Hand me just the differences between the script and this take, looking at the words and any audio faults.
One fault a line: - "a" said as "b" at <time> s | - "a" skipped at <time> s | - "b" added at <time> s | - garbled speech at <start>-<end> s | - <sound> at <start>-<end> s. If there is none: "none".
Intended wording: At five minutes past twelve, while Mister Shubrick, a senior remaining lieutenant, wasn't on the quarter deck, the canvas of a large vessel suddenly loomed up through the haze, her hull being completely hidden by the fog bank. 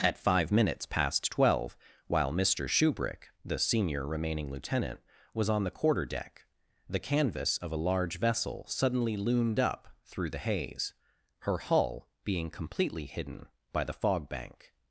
- "a" said as "the" at 3.5 s
- "wasn't" said as "was" at 5.3 s